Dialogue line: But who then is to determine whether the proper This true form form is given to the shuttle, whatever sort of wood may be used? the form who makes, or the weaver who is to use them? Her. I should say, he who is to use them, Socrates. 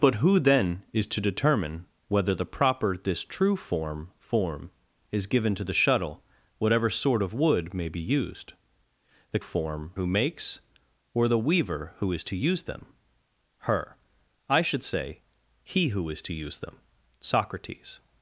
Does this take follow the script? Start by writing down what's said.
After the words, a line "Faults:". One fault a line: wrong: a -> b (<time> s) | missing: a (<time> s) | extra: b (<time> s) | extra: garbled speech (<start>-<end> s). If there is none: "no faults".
But who then is to determine whether the proper This true form form is given to the shuttle, whatever sort of wood may be used? the form who makes, or the weaver who is to use them? Her. I should say, he who is to use them, Socrates.
Faults:
no faults